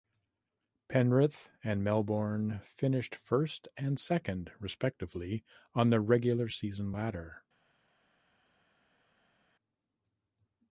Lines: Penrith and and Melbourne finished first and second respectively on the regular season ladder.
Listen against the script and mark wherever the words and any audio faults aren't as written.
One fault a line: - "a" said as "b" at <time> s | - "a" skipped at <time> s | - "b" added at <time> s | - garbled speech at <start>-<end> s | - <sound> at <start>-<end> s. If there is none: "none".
- "and" skipped at 1.8 s